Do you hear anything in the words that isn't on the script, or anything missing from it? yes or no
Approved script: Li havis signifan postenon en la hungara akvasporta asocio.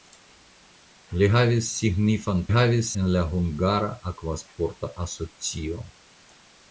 yes